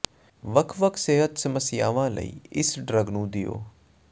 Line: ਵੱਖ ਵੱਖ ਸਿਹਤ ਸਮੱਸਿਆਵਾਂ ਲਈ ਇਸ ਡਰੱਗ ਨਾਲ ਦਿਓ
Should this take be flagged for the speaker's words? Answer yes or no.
yes